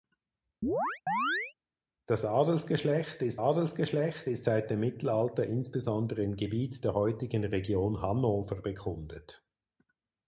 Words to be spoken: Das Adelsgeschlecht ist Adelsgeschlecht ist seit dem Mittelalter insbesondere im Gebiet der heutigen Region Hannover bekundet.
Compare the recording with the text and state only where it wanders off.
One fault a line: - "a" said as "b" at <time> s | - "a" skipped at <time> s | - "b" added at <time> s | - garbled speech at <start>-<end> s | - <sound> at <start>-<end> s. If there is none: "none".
- chirp at 0.6-1.5 s